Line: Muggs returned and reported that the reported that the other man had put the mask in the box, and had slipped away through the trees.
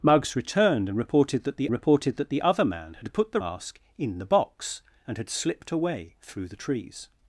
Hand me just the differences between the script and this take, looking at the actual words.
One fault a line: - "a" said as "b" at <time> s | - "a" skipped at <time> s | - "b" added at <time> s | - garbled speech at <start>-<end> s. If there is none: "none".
none